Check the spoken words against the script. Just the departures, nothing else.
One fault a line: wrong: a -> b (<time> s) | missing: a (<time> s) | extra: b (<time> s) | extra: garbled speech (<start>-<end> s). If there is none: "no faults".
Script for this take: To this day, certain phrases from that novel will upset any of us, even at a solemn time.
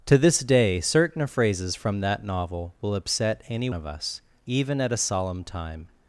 no faults